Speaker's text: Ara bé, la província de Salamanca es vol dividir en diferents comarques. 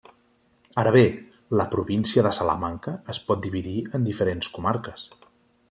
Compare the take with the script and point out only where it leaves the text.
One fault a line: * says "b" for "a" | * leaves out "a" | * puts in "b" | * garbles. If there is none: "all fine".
* says "pot" for "vol"